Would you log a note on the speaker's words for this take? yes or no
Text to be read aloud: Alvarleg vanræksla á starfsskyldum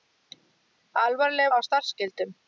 yes